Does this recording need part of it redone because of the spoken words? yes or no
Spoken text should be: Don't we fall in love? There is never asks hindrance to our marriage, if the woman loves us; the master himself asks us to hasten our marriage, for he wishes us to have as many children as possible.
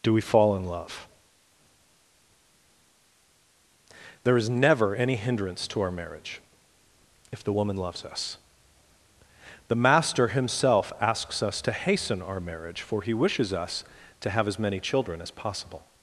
yes